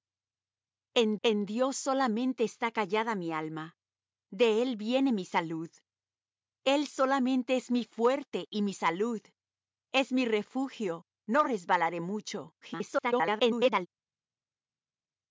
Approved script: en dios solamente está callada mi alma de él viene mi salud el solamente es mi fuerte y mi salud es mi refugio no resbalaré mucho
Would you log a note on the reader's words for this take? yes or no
yes